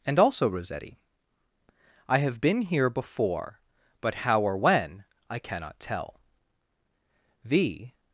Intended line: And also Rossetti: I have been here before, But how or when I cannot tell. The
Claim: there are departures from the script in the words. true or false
false